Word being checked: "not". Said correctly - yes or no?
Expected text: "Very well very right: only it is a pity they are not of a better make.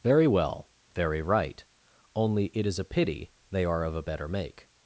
no